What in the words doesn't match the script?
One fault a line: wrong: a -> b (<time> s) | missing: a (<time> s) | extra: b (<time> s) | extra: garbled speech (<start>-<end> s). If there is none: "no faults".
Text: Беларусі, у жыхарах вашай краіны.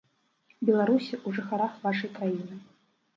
no faults